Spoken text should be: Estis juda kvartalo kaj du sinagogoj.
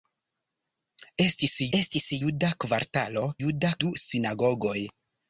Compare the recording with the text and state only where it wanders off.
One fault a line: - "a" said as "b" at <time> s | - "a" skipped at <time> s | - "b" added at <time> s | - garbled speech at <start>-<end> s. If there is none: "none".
- "estis" added at 1.8 s
- "kaj" said as "juda" at 3.4 s